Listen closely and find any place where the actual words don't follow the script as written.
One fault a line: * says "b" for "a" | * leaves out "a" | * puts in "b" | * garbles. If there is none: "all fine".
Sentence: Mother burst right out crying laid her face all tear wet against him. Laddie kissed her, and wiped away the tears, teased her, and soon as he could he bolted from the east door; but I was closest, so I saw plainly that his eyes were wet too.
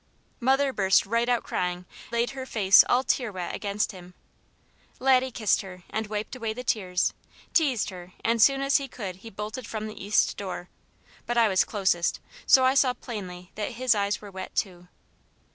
all fine